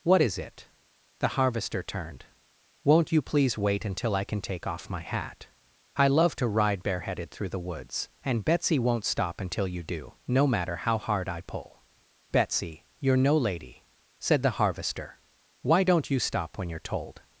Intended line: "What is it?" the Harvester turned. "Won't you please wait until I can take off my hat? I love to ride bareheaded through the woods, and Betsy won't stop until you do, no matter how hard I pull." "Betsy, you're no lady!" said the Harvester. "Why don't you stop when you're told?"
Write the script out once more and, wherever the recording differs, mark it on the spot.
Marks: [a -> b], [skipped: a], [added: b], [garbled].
"What is it?" the Harvester turned. "Won't you please wait until I can take off my hat? I love to ride bareheaded through the woods, and Betsy won't stop until you do, no matter how hard I pull." "Betsy, you're no lady!" said the Harvester. "Why don't you stop when you're told?"